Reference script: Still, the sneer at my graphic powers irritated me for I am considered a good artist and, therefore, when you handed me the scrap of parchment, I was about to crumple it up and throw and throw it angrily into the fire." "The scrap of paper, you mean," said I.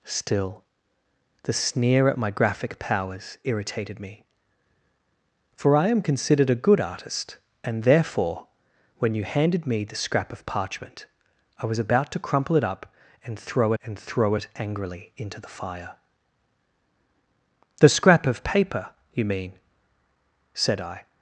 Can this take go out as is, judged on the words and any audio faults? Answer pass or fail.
pass